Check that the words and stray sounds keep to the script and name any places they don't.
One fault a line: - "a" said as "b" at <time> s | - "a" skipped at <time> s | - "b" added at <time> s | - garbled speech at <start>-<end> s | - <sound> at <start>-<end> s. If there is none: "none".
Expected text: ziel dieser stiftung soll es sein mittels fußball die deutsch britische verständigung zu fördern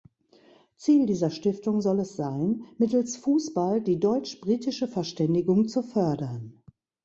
none